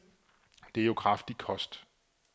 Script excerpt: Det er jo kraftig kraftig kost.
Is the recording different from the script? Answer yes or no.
yes